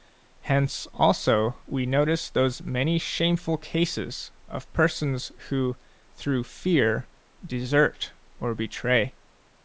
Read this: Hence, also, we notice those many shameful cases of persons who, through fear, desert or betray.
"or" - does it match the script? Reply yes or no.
yes